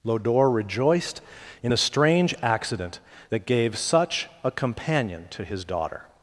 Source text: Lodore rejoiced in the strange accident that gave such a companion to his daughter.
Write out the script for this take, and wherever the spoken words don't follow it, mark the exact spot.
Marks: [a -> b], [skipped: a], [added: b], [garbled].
Lodore rejoiced in the strange accident that gave such a companion to his daughter.